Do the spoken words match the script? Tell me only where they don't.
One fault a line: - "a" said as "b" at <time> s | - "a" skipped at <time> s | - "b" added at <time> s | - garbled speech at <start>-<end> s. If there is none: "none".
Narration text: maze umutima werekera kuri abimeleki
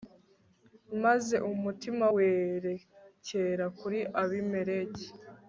none